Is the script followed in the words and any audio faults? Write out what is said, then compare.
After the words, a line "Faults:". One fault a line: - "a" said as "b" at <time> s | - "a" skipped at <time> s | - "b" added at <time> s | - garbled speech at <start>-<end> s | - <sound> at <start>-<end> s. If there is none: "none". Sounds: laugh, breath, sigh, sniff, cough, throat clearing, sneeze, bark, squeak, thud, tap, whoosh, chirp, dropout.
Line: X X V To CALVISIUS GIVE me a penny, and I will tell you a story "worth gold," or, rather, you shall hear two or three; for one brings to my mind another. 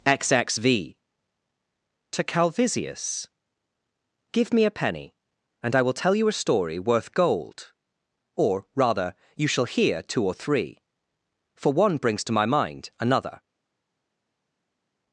X X V To CALVISIUS GIVE me a penny, and I will tell you a story "worth gold," or, rather, you shall hear two or three; for one brings to my mind another.
Faults:
none